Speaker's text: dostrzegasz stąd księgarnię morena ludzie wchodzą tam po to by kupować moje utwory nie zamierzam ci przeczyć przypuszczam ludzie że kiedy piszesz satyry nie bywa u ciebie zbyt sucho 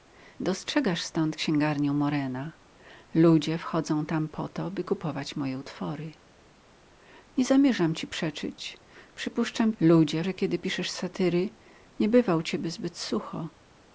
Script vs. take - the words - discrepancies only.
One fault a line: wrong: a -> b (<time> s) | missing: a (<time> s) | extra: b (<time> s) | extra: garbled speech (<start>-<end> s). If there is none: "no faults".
no faults